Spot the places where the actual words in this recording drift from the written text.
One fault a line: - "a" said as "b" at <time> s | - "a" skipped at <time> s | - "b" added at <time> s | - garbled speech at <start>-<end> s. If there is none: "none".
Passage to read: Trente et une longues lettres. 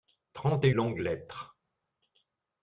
- "une" skipped at 0.7 s